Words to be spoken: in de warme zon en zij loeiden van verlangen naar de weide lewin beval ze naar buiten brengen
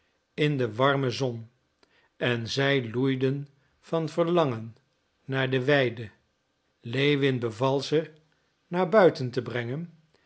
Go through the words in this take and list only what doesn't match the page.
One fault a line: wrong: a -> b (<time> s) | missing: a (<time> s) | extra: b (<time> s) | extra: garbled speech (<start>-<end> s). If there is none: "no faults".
extra: te (9.3 s)